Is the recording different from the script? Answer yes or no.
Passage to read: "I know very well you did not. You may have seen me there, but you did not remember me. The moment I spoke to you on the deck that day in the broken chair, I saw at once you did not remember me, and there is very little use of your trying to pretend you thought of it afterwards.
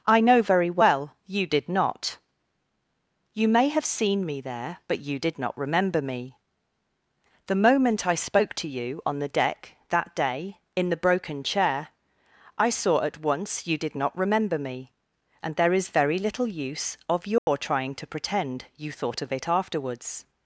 no